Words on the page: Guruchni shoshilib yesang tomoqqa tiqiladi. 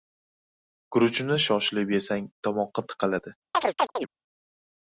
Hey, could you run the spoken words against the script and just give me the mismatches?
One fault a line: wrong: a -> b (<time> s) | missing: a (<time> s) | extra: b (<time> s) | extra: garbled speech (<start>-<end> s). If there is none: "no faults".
no faults